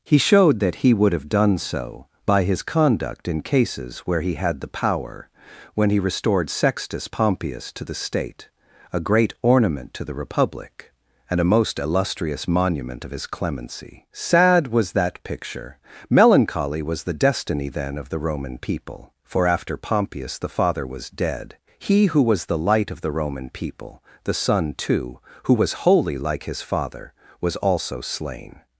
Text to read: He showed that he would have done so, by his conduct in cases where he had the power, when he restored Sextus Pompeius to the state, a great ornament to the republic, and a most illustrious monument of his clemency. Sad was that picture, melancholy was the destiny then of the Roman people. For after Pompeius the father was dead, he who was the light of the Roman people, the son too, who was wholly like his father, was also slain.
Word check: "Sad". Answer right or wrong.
right